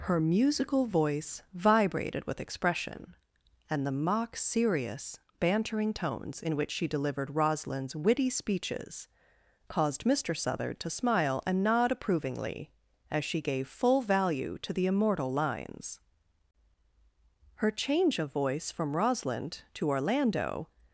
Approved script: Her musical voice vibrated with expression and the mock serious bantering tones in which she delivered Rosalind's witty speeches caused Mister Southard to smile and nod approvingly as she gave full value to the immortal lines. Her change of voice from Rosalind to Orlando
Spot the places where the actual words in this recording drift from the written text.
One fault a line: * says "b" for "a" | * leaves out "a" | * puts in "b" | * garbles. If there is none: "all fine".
all fine